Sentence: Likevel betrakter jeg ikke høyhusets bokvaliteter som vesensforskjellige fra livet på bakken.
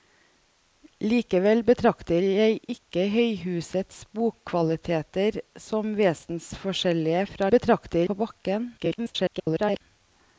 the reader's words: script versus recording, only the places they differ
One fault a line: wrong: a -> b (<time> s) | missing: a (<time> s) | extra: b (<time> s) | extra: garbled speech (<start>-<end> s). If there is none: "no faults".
wrong: livet -> betrakter (7.5 s)
extra: garbled speech (8.8-9.8 s)